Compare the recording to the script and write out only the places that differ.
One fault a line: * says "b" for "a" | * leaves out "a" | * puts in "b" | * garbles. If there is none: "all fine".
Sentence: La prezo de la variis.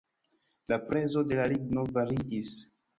* puts in "ligno"